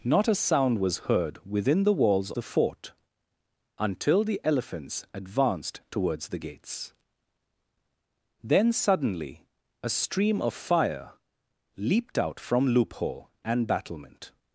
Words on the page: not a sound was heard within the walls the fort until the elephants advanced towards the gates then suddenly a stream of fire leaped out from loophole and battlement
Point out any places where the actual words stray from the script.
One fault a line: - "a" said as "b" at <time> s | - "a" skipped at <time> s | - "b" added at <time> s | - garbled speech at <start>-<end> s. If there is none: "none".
none